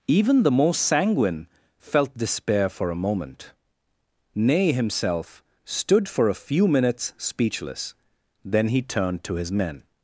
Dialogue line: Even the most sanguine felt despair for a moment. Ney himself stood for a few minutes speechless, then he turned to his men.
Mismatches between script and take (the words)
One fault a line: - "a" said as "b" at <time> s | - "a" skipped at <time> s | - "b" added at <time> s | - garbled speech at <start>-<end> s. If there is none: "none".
none